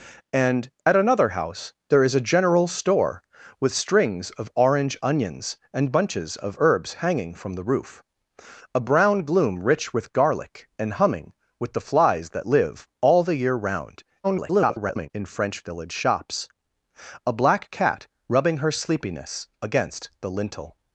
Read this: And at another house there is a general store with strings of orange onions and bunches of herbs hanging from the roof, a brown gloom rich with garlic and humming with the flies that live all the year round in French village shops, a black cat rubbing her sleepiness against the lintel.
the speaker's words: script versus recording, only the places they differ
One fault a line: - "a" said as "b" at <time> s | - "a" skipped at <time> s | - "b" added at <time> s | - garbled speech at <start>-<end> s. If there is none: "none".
- garbled speech at 14.2-15.1 s